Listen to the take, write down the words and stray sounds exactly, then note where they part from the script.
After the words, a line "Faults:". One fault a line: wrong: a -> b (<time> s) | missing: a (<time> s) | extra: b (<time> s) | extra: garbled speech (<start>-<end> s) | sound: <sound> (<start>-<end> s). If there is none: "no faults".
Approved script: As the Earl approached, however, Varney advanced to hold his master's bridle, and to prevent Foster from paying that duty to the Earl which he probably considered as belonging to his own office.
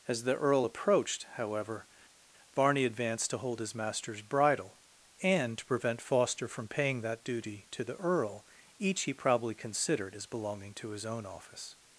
As the Earl approached, however, Varney advanced to hold his master's bridle, and to prevent Foster from paying that duty to the Earl each he probably considered as belonging to his own office.
Faults:
wrong: which -> each (8.8 s)